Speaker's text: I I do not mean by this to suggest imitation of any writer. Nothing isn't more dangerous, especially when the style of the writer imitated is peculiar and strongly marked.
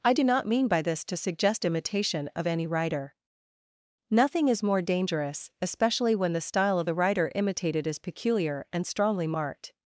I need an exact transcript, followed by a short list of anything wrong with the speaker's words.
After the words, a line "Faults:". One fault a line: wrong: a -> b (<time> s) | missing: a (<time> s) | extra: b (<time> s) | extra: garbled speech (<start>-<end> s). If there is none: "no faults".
I do not mean by this to suggest imitation of any writer. Nothing is more dangerous, especially when the style of the writer imitated is peculiar and strongly marked.
Faults:
missing: I (0.1 s)
wrong: isn't -> is (4.5 s)